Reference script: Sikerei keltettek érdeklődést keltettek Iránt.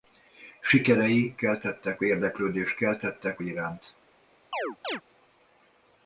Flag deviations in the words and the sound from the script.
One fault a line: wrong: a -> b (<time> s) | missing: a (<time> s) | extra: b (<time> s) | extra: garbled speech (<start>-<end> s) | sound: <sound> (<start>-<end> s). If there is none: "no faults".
sound: chirp (4.5-5.0 s)